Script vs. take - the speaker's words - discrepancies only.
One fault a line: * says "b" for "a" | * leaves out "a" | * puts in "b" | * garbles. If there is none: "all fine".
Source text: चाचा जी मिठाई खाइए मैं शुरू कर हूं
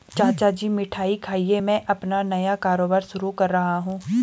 * puts in "अपना नया कारोबार"
* puts in "रहा"